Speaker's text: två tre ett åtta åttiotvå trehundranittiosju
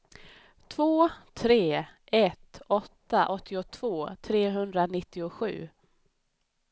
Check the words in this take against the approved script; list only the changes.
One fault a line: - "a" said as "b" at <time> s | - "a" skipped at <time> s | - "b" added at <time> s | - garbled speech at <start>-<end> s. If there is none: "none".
none